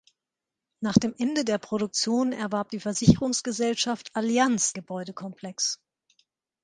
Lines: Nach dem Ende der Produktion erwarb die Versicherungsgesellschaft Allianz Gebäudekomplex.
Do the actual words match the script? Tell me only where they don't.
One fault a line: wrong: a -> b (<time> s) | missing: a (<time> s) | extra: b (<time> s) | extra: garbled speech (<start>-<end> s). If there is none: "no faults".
no faults